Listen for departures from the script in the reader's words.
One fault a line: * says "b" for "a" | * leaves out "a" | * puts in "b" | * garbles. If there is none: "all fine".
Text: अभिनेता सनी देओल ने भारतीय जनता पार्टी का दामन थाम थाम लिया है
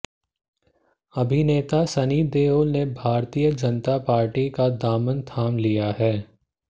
* leaves out "थाम"